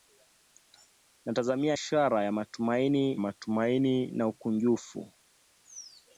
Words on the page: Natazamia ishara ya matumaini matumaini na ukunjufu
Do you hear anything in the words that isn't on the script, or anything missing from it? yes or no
no